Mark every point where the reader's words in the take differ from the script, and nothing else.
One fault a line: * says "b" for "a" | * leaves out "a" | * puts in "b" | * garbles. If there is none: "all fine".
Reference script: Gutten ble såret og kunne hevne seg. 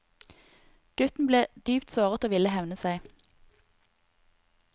* puts in "dypt"
* says "ville" for "kunne"